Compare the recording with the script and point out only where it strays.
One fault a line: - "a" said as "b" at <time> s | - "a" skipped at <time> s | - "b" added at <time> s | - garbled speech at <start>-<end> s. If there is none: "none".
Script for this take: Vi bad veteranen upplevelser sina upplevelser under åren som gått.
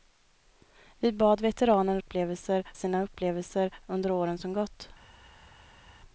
none